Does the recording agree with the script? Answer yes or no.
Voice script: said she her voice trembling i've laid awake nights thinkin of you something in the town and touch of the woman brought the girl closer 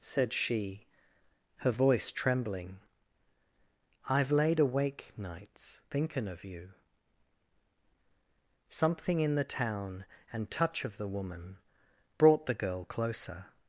yes